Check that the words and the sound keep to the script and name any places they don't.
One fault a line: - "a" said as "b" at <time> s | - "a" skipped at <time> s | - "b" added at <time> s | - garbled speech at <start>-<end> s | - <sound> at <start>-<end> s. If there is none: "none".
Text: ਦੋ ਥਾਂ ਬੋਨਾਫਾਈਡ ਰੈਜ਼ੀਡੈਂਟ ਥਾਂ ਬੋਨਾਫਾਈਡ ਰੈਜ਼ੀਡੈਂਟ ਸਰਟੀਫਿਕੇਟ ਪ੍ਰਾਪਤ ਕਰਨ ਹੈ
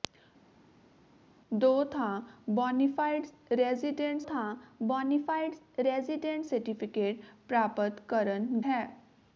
none